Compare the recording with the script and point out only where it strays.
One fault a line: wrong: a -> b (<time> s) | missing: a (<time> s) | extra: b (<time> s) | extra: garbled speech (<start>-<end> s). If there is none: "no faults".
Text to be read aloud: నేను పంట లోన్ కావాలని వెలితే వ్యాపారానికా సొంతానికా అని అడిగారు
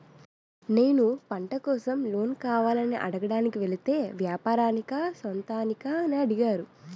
extra: కోసం (1.6 s)
extra: అడగడానికి (3.0 s)